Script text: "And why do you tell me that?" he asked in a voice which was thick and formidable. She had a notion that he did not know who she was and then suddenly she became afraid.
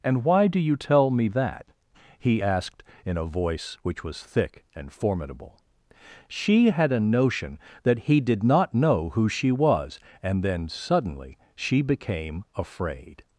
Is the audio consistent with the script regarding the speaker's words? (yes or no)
yes